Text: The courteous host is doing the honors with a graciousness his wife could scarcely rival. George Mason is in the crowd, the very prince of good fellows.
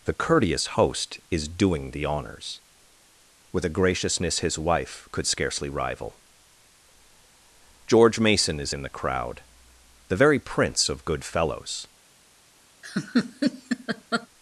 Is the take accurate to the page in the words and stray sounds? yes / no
no